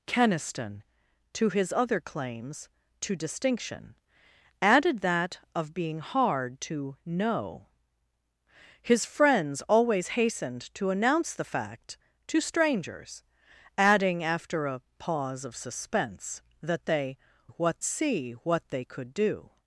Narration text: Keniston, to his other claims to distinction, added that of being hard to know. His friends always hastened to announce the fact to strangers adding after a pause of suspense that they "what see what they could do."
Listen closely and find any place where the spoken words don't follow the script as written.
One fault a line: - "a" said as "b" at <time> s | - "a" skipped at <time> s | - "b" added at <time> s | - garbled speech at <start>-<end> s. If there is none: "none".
none